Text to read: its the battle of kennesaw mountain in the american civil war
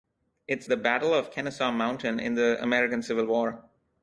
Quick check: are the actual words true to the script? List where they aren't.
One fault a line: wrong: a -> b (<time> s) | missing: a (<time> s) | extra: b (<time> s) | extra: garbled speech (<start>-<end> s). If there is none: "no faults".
no faults